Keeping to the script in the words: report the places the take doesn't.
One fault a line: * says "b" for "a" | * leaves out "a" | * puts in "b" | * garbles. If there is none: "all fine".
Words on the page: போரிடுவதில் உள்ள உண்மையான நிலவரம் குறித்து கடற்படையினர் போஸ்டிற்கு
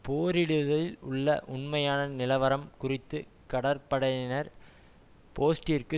all fine